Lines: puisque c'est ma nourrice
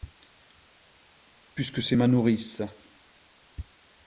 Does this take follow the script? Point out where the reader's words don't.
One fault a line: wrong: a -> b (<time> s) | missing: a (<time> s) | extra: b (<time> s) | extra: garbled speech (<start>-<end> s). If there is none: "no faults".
no faults